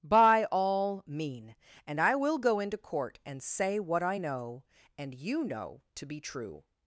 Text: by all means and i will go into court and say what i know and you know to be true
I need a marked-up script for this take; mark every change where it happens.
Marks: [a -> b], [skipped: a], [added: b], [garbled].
by all [means -> mean] and i will go into court and say what i know and you know to be true